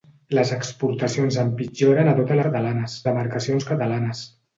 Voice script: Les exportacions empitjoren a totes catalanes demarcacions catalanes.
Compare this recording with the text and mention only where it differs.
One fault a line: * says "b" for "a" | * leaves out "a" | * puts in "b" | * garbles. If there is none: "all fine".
all fine